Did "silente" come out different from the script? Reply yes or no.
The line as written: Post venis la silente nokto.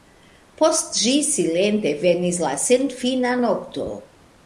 yes